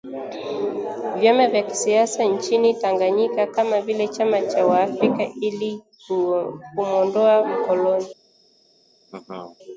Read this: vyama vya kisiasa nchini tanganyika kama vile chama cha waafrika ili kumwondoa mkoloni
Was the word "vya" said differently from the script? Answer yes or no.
no